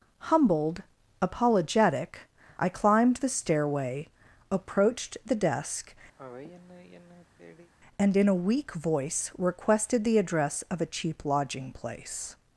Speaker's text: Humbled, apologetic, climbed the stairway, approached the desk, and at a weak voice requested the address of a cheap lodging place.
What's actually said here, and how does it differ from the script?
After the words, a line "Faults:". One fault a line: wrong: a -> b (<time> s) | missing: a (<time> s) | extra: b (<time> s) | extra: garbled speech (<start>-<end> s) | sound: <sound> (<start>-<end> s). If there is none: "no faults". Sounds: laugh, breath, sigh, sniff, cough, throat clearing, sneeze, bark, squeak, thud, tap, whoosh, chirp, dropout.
Humbled, apologetic, I climbed the stairway, approached the desk, and in a weak voice requested the address of a cheap lodging place.
Faults:
extra: I (2.6 s)
sound: sigh (6.2-7.7 s)
wrong: at -> in (8.2 s)